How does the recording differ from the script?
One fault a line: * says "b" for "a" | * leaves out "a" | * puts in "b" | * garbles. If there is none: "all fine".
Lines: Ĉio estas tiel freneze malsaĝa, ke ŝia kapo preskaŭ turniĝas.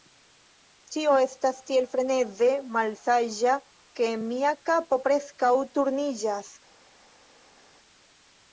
* says "mia" for "ŝia"